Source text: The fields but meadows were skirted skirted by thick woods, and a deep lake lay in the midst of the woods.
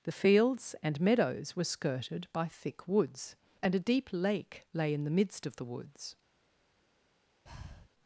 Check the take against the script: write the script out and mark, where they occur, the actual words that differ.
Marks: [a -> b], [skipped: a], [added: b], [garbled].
The fields [but -> and] meadows were skirted [skipped: skirted] by thick woods, and a deep lake lay in the midst of the woods.